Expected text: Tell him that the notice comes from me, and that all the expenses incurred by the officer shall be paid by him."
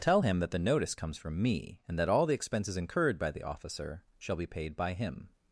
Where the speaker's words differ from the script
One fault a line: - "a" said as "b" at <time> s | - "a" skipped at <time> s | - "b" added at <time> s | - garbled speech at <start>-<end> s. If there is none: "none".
none